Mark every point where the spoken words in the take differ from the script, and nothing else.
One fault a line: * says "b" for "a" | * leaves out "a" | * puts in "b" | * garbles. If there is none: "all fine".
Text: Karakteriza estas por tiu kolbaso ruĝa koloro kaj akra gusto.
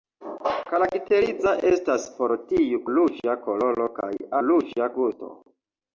* leaves out "kolbaso"
* says "ruĝa" for "akra"